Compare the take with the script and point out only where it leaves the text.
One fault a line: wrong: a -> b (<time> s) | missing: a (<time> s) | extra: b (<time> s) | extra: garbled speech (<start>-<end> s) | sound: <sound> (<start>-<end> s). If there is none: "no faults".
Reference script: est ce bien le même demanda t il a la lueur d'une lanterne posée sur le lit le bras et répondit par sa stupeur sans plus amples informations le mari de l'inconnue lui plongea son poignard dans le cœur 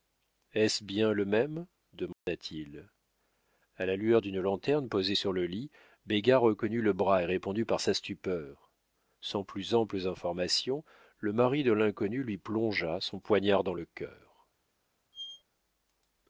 sound: dropout (2.1-2.3 s)
extra: béga reconnut (6.0 s)
sound: squeak (15.1-15.4 s)